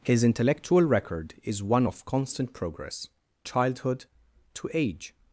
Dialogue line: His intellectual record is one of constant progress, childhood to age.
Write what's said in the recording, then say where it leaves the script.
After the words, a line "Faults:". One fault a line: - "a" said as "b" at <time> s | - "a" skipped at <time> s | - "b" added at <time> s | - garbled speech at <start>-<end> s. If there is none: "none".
His intellectual record is one of constant progress, childhood to age.
Faults:
none